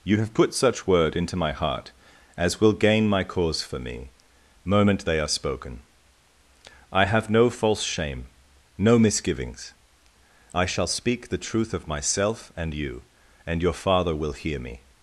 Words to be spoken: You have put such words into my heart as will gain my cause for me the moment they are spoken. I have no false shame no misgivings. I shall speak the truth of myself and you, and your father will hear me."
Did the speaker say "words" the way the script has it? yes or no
no